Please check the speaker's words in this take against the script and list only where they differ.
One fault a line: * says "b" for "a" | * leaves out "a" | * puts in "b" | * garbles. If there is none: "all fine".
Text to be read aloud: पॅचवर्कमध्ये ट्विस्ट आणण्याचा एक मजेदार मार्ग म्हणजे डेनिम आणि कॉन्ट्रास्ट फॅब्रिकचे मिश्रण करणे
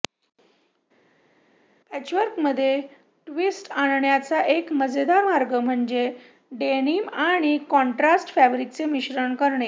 all fine